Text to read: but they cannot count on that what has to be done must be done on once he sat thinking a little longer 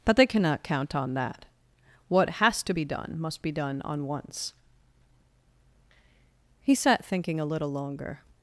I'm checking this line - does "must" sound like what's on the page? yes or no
yes